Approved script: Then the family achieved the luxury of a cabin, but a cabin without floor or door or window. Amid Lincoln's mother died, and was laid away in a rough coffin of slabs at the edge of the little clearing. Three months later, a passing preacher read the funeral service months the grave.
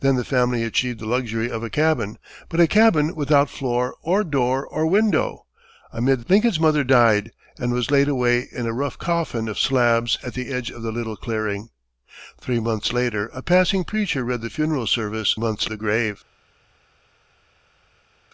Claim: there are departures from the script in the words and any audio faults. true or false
false